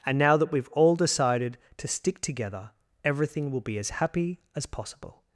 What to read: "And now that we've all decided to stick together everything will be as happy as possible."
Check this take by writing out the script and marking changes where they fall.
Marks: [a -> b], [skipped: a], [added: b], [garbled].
"And now that we've all decided to stick together everything will be as happy as possible."